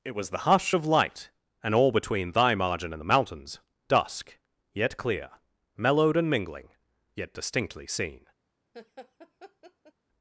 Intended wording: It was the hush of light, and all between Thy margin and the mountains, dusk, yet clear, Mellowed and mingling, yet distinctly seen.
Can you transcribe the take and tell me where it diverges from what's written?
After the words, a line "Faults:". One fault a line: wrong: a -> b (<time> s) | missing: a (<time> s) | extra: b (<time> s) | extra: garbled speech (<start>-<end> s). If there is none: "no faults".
It was the hush of light, and all between Thy margin and the mountains, dusk, yet clear, Mellowed and mingling, yet distinctly seen.
Faults:
no faults